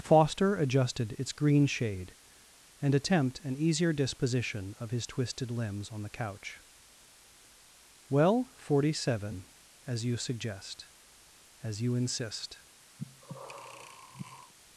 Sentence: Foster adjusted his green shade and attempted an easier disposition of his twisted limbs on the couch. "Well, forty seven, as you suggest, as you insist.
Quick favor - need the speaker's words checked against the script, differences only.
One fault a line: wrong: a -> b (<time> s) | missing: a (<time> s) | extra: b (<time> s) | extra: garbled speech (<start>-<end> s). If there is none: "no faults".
wrong: his -> its (1.2 s)
wrong: attempted -> attempt (3.0 s)